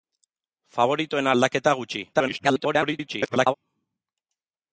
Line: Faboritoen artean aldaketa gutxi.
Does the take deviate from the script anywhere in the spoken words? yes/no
yes